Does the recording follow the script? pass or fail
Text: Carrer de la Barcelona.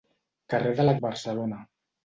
pass